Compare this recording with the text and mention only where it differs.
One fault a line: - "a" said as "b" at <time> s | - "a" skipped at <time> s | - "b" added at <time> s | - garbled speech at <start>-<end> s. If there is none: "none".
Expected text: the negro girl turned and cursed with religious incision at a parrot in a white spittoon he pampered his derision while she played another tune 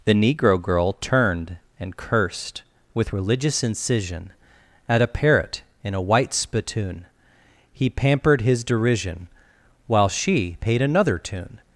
- "played" said as "paid" at 10.6 s